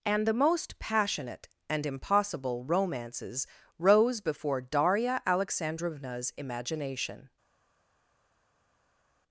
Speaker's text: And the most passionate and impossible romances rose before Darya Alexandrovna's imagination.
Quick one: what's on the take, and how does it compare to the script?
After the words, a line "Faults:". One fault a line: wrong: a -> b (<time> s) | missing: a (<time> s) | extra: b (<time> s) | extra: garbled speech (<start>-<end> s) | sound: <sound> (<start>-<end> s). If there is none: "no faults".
And the most passionate and impossible romances rose before Darya Alexandrovna's imagination.
Faults:
no faults